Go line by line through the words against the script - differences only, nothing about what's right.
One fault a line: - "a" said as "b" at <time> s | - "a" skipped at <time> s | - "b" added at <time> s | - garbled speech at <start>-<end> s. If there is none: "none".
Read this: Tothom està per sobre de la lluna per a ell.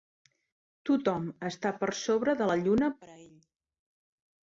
none